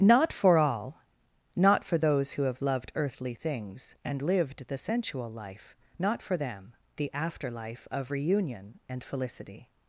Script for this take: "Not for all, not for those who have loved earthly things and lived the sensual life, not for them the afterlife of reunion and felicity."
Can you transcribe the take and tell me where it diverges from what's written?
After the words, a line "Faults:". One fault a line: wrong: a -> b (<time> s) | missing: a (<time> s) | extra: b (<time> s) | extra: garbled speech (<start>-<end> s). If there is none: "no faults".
"Not for all, not for those who have loved earthly things and lived the sensual life, not for them the afterlife of reunion and felicity."
Faults:
no faults